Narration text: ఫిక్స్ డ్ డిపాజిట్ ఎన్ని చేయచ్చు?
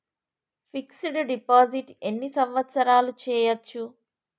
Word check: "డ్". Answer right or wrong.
right